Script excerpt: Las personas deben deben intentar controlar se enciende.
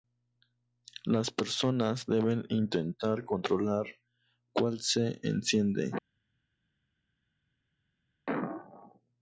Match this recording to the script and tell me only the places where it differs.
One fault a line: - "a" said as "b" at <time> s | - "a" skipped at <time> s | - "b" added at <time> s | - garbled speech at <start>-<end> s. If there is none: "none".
- "deben" skipped at 2.5 s
- "cuál" added at 4.5 s